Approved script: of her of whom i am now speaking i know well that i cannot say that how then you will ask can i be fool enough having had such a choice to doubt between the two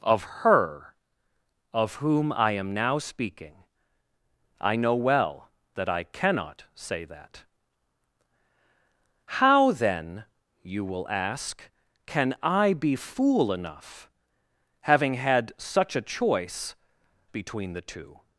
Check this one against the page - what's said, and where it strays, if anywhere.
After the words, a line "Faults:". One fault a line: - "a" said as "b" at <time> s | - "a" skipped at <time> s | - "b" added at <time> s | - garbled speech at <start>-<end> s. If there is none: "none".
of her of whom i am now speaking i know well that i cannot say that how then you will ask can i be fool enough having had such a choice between the two
Faults:
- "to doubt" skipped at 16.8 s